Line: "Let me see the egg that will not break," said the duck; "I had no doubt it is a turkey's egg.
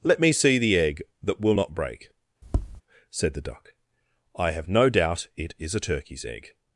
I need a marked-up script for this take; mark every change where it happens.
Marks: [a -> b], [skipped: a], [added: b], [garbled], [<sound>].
"Let me see the egg that will not break," [tap] said the duck; "I [had -> have] no doubt it is a turkey's egg.